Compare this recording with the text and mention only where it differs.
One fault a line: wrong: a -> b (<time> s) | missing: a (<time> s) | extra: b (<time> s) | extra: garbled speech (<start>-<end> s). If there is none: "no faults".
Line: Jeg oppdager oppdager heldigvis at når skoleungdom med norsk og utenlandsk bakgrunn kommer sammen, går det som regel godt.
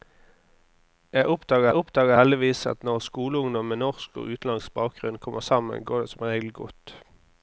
no faults